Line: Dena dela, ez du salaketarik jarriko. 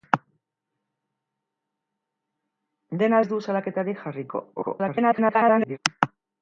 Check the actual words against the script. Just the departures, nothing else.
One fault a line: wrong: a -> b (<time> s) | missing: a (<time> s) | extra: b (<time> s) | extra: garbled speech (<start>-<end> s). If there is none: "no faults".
missing: dela (3.2 s)
extra: garbled speech (4.6-5.8 s)